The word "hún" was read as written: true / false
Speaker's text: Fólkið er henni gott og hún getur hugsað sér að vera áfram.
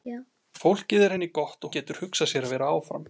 false